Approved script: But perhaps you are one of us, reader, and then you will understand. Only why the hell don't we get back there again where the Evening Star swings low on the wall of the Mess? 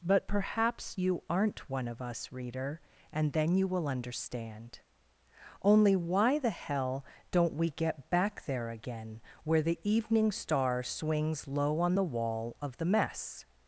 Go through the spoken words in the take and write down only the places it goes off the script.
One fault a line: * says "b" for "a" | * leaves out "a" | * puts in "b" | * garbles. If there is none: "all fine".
* says "aren't" for "are"